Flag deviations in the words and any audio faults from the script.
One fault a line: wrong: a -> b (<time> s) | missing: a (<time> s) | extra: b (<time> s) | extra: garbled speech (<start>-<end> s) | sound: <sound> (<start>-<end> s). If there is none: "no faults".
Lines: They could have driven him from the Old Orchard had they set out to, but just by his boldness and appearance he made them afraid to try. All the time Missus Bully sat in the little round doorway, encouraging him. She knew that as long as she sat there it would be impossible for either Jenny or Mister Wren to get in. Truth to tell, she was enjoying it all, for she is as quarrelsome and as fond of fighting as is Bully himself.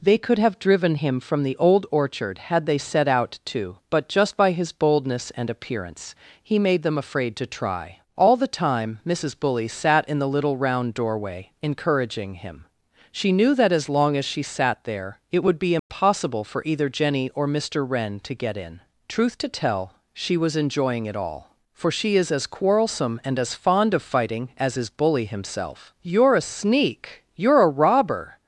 sound: dropout (15.8-15.9 s)
extra: You're a sneak You're a robber (26.0 s)